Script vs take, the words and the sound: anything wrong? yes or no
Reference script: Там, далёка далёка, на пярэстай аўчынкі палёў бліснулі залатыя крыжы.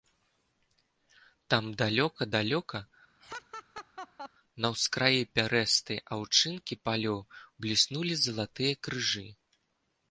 yes